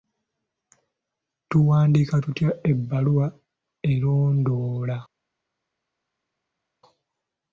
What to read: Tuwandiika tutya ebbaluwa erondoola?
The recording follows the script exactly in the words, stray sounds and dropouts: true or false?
true